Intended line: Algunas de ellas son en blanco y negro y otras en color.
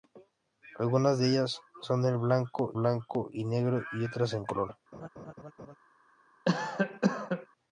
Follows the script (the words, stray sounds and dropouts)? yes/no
no